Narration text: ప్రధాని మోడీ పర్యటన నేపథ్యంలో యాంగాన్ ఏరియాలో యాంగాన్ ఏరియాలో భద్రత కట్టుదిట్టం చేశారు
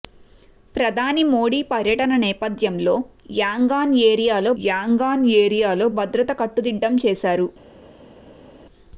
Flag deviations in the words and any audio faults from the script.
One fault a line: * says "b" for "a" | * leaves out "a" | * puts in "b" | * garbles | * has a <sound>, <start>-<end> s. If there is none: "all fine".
all fine